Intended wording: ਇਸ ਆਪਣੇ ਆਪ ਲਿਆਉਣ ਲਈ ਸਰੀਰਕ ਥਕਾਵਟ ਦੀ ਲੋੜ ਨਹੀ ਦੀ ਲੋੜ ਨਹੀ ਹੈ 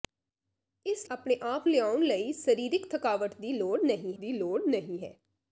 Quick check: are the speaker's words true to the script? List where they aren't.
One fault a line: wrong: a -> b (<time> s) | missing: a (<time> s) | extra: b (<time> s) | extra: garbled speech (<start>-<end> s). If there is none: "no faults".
no faults